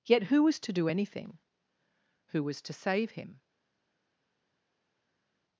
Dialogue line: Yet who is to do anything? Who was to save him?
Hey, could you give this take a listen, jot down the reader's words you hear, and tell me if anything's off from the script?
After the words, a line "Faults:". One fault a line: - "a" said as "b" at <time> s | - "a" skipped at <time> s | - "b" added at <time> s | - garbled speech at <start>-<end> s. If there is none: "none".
Yet who was to do anything? Who was to save him?
Faults:
- "is" said as "was" at 0.4 s